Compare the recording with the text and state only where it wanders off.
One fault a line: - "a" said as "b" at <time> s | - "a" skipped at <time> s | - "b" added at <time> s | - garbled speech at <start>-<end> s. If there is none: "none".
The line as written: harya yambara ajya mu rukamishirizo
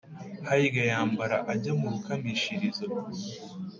none